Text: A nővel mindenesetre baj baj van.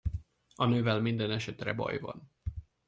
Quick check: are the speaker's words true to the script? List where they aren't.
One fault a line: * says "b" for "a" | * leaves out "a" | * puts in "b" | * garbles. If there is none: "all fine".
* leaves out "baj"